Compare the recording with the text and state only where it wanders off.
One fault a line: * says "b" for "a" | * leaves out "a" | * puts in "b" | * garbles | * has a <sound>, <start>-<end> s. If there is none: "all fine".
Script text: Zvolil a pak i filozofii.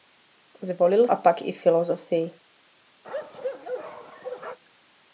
* has a bark, 3.0-4.6 s